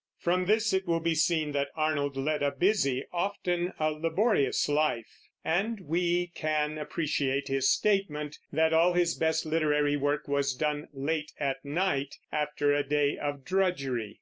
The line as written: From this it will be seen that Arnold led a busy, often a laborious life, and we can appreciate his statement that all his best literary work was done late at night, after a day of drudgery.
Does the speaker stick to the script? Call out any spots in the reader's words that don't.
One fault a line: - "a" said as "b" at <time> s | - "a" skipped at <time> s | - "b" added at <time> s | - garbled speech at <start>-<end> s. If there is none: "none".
none